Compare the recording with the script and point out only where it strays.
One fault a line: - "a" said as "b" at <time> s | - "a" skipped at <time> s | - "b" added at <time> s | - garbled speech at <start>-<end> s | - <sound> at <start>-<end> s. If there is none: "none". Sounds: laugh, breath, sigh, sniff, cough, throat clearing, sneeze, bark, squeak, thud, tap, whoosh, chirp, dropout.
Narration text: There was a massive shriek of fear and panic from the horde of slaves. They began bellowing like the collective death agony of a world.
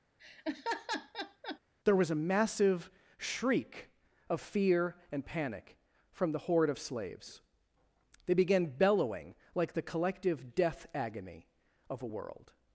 - laugh at 0.2-1.6 s